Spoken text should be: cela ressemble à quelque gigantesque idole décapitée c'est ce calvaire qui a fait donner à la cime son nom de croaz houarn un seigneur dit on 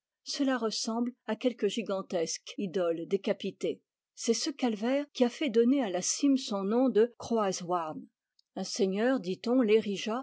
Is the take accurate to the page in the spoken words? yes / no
yes